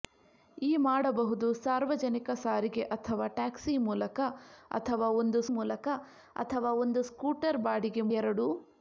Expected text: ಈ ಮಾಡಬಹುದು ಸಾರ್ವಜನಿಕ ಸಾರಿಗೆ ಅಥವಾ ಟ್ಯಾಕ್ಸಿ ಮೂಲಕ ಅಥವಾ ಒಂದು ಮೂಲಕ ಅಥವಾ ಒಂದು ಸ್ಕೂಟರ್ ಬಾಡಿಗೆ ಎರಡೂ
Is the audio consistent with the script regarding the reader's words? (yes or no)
yes